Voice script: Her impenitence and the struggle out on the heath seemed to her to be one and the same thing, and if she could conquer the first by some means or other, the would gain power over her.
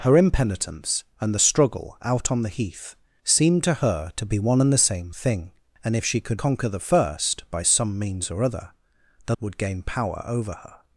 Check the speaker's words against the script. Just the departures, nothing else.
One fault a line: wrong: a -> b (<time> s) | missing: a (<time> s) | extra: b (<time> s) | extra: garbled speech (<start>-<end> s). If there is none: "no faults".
no faults